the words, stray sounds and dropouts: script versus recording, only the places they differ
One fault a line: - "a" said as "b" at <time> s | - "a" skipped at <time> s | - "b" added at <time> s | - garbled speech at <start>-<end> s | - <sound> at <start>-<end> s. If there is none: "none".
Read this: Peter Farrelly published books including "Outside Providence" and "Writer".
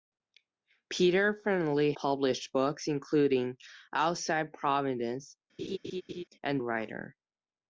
- laugh at 5.6-6.2 s